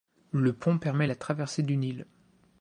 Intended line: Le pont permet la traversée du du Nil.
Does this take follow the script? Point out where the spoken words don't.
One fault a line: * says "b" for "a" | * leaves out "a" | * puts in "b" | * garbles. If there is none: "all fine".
* leaves out "du"